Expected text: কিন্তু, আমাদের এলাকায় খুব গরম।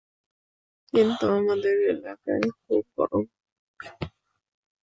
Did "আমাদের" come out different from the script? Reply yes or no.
no